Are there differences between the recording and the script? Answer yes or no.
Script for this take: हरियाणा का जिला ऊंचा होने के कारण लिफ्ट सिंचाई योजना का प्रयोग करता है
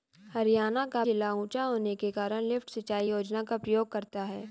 no